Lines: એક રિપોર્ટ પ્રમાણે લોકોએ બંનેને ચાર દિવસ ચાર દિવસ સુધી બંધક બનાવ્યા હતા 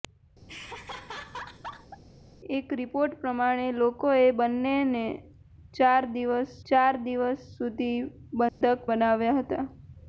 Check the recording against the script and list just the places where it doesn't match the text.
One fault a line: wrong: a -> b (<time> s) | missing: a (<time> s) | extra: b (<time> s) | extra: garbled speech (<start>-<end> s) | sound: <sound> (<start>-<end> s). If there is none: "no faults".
sound: laugh (0.5-2.0 s)
sound: dropout (8.5-8.6 s)